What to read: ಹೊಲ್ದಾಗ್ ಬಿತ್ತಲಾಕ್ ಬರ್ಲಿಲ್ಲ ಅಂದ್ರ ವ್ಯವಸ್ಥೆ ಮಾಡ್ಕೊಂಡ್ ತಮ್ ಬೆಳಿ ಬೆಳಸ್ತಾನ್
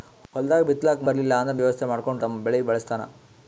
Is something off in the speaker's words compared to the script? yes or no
no